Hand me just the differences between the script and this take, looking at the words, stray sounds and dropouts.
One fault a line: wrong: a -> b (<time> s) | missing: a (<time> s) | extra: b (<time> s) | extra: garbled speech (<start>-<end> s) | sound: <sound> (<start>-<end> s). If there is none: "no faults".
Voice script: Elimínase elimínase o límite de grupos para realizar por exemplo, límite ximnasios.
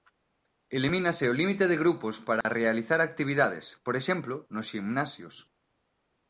missing: elimínase (1.2 s)
sound: dropout (2.4-2.4 s)
extra: actividades (3.0 s)
wrong: límite -> nos (4.5 s)